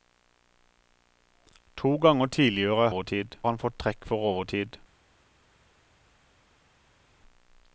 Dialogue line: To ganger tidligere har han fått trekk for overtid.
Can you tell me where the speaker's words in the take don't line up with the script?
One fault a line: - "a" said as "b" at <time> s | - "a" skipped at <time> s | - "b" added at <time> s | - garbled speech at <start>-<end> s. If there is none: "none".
- "har" said as "overtid" at 2.9 s